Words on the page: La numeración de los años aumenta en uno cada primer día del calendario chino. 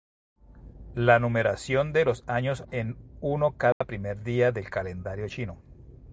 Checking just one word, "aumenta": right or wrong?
wrong